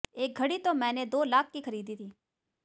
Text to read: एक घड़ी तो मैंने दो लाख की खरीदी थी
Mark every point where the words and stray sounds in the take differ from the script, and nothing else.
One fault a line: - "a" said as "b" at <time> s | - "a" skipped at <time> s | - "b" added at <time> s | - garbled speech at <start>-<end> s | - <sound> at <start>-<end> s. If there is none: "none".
none